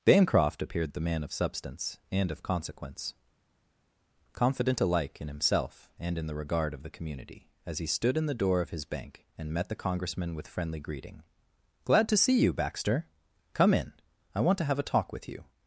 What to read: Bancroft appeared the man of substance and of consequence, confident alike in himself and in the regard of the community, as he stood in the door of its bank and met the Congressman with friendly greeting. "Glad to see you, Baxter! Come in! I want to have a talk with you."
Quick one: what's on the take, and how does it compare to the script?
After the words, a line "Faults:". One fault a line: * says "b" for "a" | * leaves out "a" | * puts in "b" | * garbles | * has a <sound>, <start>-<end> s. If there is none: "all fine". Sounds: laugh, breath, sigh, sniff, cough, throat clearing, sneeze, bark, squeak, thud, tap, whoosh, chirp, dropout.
Bancroft appeared the man of substance and of consequence, confident alike in himself and in the regard of the community, as he stood in the door of his bank and met the Congressman with friendly greeting. "Glad to see you, Baxter! Come in! I want to have a talk with you."
Faults:
* says "his" for "its"